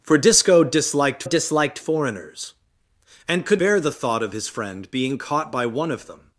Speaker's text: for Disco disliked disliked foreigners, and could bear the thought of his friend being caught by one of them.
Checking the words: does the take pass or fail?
pass